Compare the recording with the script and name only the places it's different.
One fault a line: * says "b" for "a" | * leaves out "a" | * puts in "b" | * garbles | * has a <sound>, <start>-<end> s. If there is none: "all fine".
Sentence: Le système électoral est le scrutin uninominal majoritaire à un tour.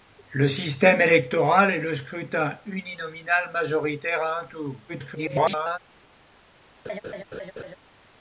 * garbles
* has a laugh, 6.8-7.8 s